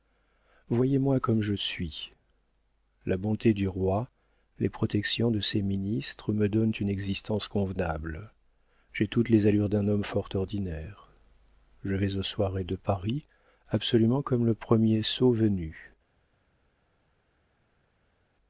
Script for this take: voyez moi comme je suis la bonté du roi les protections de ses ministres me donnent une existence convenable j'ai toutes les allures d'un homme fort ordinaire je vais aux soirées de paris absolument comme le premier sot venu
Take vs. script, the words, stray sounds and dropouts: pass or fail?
pass